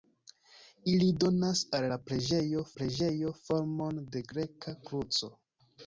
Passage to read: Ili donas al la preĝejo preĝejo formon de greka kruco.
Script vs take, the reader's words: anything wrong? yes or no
no